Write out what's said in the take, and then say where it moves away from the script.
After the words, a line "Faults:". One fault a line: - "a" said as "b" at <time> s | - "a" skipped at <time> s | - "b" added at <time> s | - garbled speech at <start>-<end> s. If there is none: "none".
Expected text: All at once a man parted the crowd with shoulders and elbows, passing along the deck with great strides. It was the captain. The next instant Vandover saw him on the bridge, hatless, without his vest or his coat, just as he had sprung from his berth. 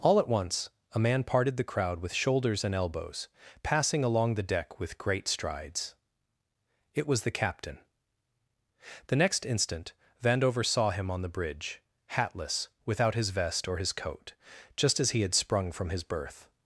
All at once a man parted the crowd with shoulders and elbows, passing along the deck with great strides. It was the captain. The next instant Vandover saw him on the bridge, hatless, without his vest or his coat, just as he had sprung from his berth.
Faults:
none